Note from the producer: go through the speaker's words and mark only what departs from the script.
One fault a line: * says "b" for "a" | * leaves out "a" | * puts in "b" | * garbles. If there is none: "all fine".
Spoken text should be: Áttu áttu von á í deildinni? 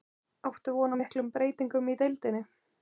* leaves out "áttu"
* puts in "miklum breytingum"